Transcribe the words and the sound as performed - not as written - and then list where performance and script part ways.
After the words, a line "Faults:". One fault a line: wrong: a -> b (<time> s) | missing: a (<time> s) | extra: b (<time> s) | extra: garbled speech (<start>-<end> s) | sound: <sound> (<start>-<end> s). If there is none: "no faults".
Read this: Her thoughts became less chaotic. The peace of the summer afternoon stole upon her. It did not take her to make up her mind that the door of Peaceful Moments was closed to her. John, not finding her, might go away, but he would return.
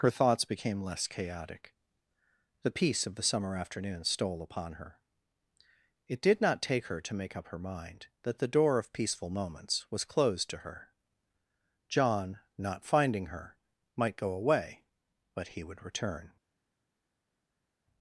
Her thoughts became less chaotic. The peace of the summer afternoon stole upon her. It did not take her to make up her mind that the door of Peaceful Moments was closed to her. John, not finding her, might go away, but he would return.
Faults:
no faults